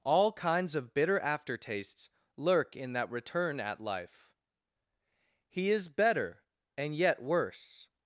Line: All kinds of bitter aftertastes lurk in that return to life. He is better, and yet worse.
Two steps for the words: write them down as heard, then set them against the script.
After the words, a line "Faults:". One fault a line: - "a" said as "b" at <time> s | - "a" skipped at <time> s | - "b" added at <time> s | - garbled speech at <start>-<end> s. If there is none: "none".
All kinds of bitter aftertastes lurk in that return at life. He is better, and yet worse.
Faults:
- "to" said as "at" at 3.6 s